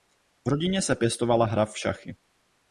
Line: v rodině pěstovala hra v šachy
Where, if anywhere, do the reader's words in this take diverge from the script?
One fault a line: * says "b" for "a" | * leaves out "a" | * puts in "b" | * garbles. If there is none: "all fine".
* puts in "se"